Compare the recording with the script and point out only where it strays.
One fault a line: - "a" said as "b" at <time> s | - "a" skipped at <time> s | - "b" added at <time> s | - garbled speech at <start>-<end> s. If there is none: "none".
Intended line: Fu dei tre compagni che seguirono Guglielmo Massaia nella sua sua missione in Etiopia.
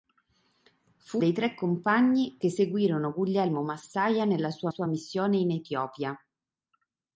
none